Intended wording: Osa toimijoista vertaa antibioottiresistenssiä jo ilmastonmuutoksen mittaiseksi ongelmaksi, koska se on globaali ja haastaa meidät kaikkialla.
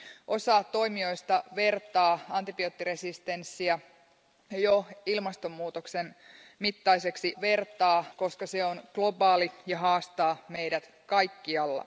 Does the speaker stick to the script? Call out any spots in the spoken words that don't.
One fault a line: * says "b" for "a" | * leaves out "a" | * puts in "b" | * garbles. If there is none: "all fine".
* says "vertaa" for "ongelmaksi"